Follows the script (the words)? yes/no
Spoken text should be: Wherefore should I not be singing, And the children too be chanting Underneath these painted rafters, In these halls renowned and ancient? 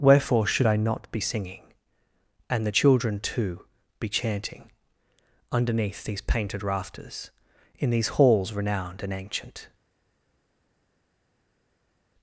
yes